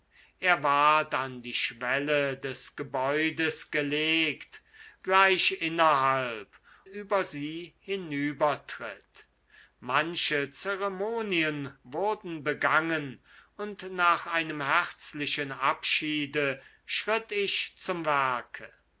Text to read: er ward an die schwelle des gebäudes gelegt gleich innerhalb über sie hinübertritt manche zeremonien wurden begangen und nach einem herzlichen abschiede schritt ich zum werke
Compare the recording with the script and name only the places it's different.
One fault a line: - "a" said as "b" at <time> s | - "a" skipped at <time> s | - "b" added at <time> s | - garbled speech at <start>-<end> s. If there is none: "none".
none